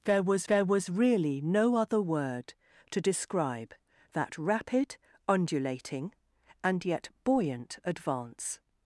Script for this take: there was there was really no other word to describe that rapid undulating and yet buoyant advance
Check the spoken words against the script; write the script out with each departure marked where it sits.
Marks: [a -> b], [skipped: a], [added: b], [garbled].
there was there was really no other word to describe that rapid undulating and yet buoyant advance